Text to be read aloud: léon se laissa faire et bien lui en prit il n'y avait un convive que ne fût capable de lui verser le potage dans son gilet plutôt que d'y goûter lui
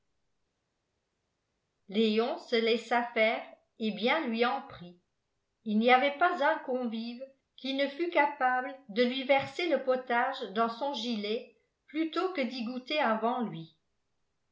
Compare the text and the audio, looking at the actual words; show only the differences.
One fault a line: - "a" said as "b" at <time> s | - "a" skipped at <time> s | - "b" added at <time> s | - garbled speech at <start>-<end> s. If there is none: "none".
- "pas" added at 6.2 s
- "que" said as "qui" at 7.6 s
- "avant" added at 13.0 s